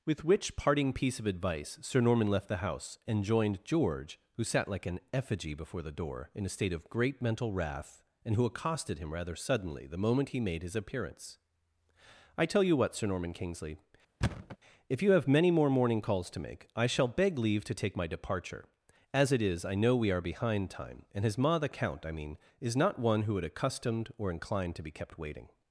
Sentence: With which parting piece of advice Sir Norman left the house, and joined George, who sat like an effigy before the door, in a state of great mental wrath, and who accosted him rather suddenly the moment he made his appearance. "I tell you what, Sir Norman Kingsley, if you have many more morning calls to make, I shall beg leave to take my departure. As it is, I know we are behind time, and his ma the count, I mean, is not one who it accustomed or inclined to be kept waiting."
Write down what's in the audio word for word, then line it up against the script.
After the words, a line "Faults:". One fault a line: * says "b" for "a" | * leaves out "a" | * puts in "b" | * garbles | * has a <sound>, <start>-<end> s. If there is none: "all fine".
With which parting piece of advice Sir Norman left the house, and joined George, who sat like an effigy before the door, in a state of great mental wrath, and who accosted him rather suddenly the moment he made his appearance. "I tell you what, Sir Norman Kingsley, if you have many more morning calls to make, I shall beg leave to take my departure. As it is, I know we are behind time, and his ma the count, I mean, is not one who would accustomed or inclined to be kept waiting."
Faults:
* has a thud, 14.2-14.6 s
* says "would" for "it"